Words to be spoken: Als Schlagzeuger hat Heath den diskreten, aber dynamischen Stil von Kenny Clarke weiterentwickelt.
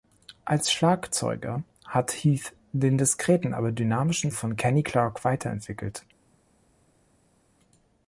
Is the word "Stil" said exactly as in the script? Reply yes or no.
no